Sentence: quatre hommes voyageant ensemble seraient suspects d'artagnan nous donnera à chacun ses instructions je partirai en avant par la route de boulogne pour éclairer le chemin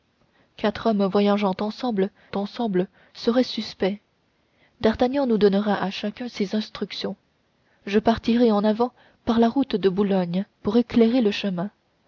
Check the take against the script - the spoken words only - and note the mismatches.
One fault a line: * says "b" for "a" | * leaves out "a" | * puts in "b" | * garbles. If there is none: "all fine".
* puts in "ensemble"